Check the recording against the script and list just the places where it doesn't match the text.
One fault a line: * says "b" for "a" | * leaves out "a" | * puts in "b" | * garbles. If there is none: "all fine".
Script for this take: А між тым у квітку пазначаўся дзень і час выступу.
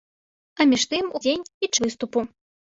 * leaves out "квітку пазначаўся"
* leaves out "час"